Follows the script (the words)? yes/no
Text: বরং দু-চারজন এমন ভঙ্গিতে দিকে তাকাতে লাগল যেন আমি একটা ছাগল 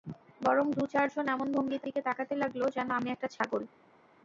yes